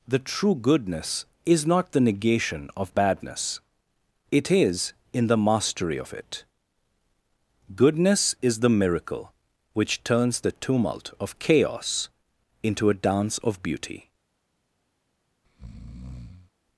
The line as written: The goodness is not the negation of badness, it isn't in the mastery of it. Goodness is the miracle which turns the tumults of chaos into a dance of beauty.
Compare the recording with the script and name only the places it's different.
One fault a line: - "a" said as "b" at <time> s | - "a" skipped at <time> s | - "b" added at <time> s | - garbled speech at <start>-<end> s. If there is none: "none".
- "true" added at 0.2 s
- "isn't" said as "is" at 4.5 s
- "tumults" said as "tumult" at 10.5 s